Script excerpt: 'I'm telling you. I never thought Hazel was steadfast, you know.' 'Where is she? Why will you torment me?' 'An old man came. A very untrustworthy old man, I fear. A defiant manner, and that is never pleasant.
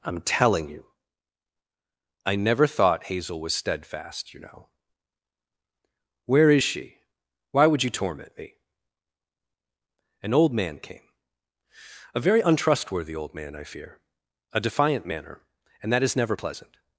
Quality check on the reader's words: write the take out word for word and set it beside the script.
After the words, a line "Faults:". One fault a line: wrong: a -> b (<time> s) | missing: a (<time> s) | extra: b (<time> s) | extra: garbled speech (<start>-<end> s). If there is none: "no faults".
'I'm telling you. I never thought Hazel was steadfast, you know.' 'Where is she? Why would you torment me?' 'An old man came. A very untrustworthy old man, I fear. A defiant manner, and that is never pleasant.
Faults:
wrong: will -> would (7.7 s)